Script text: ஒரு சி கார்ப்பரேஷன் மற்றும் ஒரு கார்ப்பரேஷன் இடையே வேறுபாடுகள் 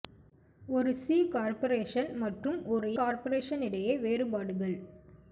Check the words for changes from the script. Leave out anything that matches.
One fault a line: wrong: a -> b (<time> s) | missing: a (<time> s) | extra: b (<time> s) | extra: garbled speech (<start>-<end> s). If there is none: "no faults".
no faults